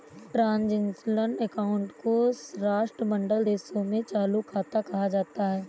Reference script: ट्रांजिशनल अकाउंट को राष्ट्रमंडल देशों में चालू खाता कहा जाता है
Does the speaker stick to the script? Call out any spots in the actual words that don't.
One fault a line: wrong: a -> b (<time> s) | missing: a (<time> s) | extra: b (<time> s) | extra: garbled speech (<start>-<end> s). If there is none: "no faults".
no faults